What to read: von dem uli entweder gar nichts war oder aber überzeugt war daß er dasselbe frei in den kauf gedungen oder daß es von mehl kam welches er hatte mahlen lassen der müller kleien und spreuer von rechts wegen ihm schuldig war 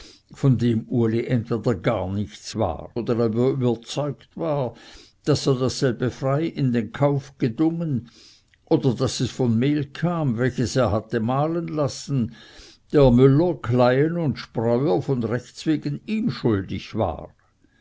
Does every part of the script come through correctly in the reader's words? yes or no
yes